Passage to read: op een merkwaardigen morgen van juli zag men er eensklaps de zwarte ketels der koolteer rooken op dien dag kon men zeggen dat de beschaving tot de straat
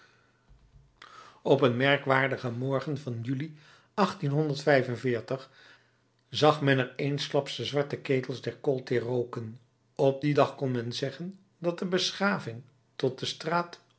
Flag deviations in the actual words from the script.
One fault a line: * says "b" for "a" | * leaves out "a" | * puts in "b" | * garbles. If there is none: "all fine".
all fine